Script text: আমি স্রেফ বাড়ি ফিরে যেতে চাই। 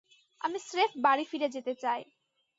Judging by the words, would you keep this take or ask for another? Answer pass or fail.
pass